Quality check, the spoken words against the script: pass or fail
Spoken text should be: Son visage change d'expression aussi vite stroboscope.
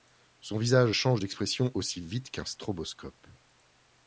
fail